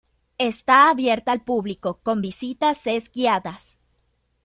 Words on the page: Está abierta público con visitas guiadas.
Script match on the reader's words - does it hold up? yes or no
no